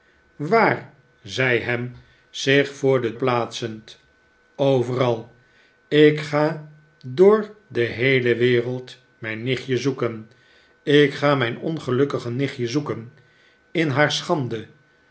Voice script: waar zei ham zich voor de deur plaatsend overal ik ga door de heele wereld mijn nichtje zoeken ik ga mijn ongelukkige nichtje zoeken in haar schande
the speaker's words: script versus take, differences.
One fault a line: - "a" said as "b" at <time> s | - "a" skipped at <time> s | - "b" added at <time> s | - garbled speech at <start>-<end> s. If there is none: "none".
- "deur" skipped at 3.1 s